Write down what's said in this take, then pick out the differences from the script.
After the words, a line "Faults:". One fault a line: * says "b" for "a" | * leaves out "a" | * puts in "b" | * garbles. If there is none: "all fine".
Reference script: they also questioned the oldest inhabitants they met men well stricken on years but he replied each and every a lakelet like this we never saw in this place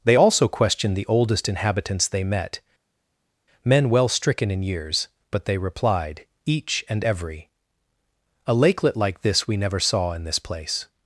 they also questioned the oldest inhabitants they met men well stricken in years but they replied each and every a lakelet like this we never saw in this place
Faults:
* says "in" for "on"
* says "they" for "he"